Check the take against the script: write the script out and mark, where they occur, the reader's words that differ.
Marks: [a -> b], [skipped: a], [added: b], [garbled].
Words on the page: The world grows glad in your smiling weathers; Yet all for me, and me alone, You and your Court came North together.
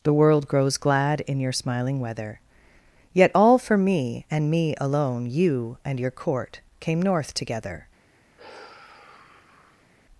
The world grows glad in your smiling [weathers; -> weather] Yet all for me, and me alone, You and your Court came North together.